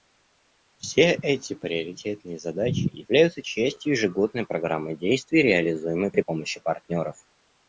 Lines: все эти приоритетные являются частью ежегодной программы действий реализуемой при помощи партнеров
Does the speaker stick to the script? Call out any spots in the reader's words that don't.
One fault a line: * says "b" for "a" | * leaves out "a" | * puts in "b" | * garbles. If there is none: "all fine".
* puts in "задачи"